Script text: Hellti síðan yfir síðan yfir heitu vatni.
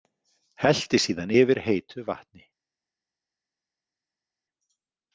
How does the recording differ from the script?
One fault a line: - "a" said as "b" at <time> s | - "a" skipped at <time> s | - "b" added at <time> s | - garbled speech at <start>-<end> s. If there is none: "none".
- "síðan yfir" skipped at 1.6 s